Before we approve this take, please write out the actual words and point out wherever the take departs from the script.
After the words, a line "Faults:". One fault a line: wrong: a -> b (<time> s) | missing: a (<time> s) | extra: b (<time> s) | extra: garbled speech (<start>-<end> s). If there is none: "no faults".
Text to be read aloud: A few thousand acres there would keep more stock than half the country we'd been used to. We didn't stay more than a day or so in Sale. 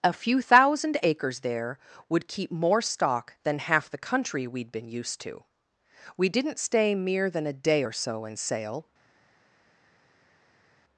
A few thousand acres there would keep more stock than half the country we'd been used to. We didn't stay mere than a day or so in Sale.
Faults:
wrong: more -> mere (6.9 s)